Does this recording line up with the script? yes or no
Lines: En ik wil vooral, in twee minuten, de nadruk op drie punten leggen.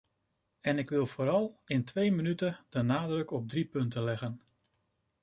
yes